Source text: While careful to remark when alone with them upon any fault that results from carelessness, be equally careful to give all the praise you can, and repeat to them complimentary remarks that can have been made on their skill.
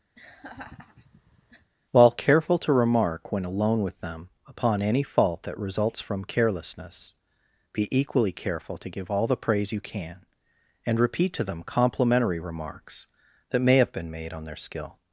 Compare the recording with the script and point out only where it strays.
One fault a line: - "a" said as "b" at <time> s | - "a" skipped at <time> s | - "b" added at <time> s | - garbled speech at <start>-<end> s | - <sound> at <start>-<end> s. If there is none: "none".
- laugh at 0.2-1.7 s
- "can" said as "may" at 13.6 s